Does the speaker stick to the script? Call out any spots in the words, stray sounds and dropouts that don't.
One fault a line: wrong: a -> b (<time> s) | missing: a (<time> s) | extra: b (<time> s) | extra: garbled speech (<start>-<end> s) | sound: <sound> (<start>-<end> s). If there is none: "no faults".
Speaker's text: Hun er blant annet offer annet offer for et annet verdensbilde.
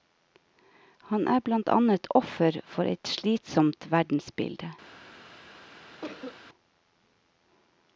wrong: Hun -> Han (1.1 s)
missing: annet offer (2.6 s)
wrong: annet -> slitsomt (3.1 s)
sound: cough (6.0-6.4 s)